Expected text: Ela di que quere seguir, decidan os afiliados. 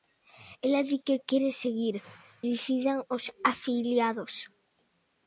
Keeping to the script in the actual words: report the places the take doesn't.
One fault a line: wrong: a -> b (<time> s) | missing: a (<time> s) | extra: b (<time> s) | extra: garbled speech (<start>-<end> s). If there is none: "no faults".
no faults